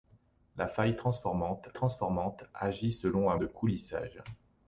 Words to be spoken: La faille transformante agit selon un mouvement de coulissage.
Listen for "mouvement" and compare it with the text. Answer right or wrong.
wrong